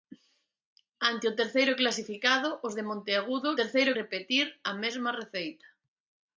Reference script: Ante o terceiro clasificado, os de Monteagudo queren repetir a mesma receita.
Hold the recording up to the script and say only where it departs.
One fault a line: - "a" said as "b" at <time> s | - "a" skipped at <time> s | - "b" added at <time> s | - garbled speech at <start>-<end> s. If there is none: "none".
- "queren" said as "terceiro" at 3.6 s